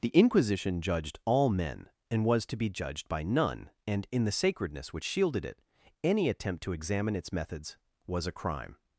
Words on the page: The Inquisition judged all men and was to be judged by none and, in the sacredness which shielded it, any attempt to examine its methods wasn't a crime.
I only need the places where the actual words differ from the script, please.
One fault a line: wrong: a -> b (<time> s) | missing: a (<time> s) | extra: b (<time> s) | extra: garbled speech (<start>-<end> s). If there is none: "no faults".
wrong: wasn't -> was (8.1 s)